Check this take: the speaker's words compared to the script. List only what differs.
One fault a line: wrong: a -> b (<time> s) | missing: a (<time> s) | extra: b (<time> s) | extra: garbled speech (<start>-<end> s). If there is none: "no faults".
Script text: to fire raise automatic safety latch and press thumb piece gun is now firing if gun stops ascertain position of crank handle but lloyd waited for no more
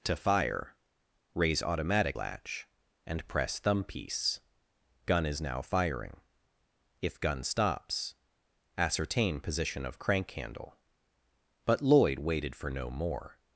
missing: safety (2.2 s)